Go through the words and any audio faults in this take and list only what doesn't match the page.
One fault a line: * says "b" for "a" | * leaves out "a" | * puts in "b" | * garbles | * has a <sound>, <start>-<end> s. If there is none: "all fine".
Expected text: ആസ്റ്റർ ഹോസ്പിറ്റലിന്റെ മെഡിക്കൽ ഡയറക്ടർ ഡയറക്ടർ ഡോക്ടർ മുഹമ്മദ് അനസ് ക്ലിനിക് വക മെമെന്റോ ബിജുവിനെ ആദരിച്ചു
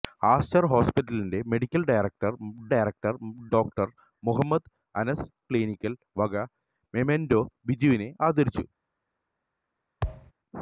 * has a thud, 10.0-10.3 s